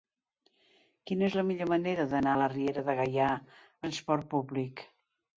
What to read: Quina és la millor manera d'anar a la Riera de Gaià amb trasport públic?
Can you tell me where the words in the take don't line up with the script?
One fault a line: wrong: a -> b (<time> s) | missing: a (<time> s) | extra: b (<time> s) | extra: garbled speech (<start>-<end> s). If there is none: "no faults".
missing: a (2.4 s)
missing: amb (3.3 s)